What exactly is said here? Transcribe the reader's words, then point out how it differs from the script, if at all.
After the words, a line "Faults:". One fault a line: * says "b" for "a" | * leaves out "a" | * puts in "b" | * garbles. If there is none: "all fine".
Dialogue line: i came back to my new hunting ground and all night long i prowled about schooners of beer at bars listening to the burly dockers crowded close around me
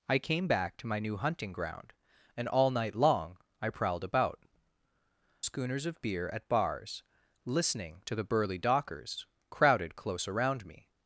i came back to my new hunting ground and all night long i prowled about schooners of beer at bars listening to the burly dockers crowded close around me
Faults:
all fine